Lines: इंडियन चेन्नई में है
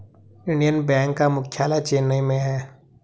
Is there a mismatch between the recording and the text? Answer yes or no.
yes